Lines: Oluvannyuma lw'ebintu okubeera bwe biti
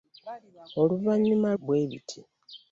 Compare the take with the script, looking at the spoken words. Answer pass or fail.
fail